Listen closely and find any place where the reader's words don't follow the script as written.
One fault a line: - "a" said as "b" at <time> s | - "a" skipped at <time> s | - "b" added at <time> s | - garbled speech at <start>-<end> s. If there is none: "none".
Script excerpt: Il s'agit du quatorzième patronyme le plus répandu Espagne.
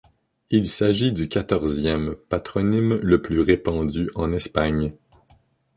- "en" added at 4.1 s